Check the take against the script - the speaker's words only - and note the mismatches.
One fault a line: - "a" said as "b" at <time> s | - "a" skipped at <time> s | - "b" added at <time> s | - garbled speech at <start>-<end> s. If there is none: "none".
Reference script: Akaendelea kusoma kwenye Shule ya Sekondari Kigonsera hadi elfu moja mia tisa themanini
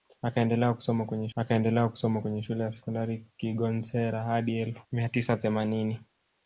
- "akaendelea kusoma kwenye" added at 1.3 s
- "moja" skipped at 4.8 s